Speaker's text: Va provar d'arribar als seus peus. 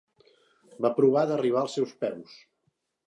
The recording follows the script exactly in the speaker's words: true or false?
true